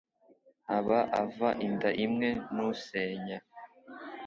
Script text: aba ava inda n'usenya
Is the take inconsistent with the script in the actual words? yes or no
yes